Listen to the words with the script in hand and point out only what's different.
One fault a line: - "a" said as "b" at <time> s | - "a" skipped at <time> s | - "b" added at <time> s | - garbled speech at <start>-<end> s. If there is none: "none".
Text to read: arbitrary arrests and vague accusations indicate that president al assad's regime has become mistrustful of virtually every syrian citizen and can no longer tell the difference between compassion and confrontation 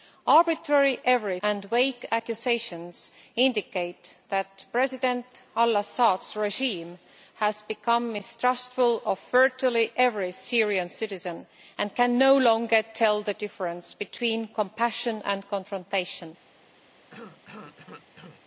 - "arrests" said as "every" at 1.0 s